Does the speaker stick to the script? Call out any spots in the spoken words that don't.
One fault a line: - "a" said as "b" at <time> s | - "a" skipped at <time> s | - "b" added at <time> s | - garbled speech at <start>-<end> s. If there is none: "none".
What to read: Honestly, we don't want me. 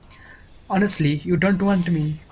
- "we" said as "you" at 1.2 s